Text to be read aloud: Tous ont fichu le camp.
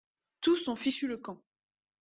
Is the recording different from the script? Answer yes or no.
no